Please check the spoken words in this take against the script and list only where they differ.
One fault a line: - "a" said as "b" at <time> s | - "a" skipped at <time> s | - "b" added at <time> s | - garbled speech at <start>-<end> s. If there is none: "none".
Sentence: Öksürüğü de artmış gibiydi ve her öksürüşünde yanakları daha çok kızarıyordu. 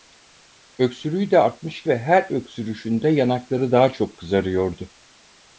- "gibiydi" skipped at 1.8 s